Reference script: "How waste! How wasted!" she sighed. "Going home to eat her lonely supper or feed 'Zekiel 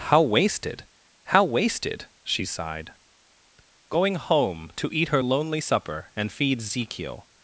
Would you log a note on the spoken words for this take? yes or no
yes